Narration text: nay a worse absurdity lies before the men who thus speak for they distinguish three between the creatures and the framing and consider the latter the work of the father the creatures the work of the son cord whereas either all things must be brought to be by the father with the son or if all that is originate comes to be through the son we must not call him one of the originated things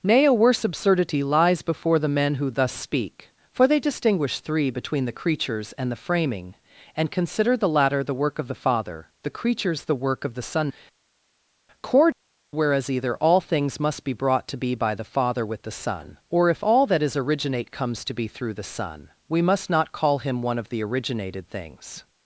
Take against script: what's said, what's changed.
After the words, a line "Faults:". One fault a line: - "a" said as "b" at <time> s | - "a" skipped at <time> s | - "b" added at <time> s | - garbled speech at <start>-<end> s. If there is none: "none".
nay a worse absurdity lies before the men who thus speak for they distinguish three between the creatures and the framing and consider the latter the work of the father the creatures the work of the son cord whereas either all things must be brought to be by the father with the son or if all that is originate comes to be through the son we must not call him one of the originated things
Faults:
none